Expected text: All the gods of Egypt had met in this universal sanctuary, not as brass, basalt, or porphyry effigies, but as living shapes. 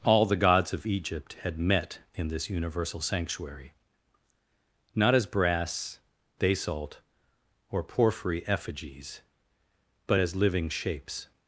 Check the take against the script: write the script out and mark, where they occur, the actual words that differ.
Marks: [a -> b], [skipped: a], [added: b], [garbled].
All the gods of Egypt had met in this universal sanctuary, not as brass, basalt, or porphyry effigies, but as living shapes.